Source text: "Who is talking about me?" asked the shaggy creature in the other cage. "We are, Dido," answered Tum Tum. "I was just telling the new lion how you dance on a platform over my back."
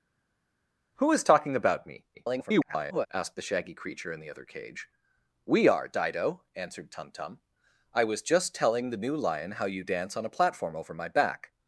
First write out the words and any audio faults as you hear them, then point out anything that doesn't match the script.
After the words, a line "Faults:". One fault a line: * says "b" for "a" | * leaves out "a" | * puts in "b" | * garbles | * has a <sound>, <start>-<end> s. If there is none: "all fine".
"Who is talking about me?" [garbled] asked the shaggy creature in the other cage. "We are, Dido," answered Tum Tum. "I was just telling the new lion how you dance on a platform over my back."
Faults:
* garbles